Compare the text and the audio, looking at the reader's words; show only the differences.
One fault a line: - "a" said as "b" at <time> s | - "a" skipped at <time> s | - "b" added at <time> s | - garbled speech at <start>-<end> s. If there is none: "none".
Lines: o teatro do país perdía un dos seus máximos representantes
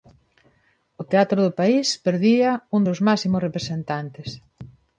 - "dos" skipped at 2.8 s